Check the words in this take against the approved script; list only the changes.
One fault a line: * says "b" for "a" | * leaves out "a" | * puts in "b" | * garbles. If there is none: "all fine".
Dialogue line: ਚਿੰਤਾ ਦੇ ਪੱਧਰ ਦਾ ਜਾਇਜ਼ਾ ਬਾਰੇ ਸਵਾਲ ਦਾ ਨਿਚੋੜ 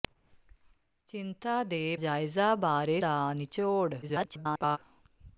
* leaves out "ਪੱਧਰ ਦਾ"
* leaves out "ਸਵਾਲ"
* garbles